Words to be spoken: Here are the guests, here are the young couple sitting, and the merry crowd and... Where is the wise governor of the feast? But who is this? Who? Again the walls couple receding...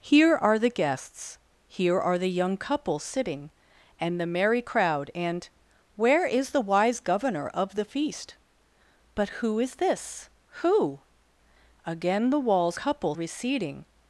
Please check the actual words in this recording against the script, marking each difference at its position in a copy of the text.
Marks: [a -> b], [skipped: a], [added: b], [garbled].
Here are the guests, here are the young couple sitting, and the merry crowd and... Where is the wise governor of the feast? But who is this? Who? Again the walls couple receding...